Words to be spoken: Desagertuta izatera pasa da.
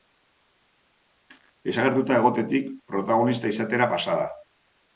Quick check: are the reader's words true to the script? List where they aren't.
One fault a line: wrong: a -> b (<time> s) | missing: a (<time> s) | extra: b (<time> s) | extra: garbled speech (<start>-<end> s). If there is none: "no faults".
extra: egotetik protagonista (2.2 s)